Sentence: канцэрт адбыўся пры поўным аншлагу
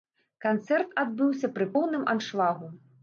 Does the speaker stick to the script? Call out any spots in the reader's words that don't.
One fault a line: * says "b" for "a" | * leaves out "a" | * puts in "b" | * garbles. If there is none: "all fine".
all fine